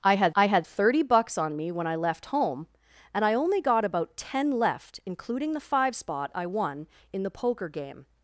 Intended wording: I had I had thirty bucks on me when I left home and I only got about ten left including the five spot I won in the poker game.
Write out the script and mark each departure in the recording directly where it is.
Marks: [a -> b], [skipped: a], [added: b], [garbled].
I had I had thirty bucks on me when I left home and I only got about ten left including the five spot I won in the poker game.